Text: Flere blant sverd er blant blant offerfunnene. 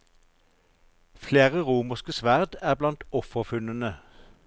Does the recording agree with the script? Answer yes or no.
no